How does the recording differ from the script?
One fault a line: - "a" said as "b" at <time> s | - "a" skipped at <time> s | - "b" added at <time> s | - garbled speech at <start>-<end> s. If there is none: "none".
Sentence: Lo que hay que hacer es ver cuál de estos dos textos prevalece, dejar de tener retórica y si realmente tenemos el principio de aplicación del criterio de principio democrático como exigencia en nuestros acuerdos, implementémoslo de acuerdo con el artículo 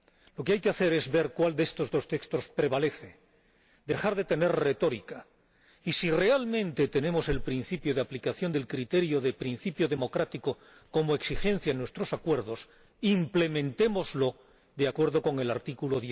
none